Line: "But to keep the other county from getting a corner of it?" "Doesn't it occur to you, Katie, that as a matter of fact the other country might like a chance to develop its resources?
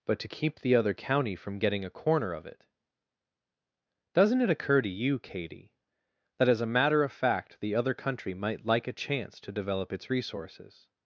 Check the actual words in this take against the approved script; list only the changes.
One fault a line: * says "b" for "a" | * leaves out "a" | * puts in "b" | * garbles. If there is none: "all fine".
all fine